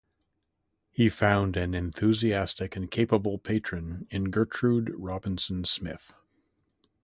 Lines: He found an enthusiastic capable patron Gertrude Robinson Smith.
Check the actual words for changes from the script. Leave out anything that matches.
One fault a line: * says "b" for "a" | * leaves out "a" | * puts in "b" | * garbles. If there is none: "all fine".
* puts in "and"
* puts in "in"